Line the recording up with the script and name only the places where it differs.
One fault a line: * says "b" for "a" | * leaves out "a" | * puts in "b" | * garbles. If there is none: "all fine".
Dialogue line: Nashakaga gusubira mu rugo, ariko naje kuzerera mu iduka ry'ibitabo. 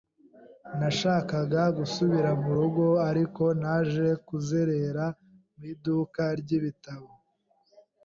all fine